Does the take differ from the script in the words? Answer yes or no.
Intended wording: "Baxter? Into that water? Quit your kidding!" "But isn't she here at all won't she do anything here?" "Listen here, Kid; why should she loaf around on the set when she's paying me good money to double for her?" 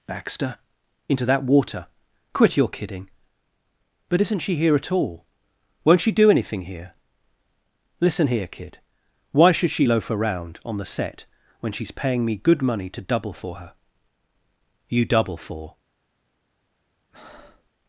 yes